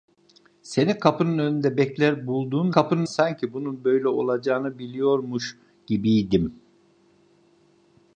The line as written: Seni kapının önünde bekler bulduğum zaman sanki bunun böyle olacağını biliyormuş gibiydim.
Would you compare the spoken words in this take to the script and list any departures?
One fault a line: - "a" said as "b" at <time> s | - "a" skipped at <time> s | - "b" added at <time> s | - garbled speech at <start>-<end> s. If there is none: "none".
- "zaman" said as "kapının" at 2.7 s